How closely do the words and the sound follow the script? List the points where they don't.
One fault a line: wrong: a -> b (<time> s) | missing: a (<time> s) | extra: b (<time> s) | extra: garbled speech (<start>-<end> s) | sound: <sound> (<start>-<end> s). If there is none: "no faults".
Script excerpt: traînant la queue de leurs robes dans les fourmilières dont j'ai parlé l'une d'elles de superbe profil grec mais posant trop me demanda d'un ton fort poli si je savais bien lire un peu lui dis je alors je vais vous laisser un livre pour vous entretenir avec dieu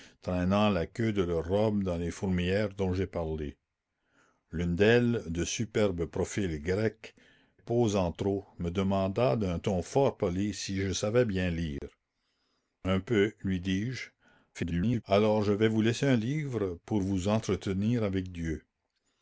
missing: mais (7.1 s)
sound: dropout (11.8-11.8 s)
extra: garbled speech (14.5-15.0 s)